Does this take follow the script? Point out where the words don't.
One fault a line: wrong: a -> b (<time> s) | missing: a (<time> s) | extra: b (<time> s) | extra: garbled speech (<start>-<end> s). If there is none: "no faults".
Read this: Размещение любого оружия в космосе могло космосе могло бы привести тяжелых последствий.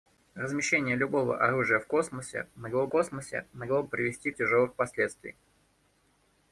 no faults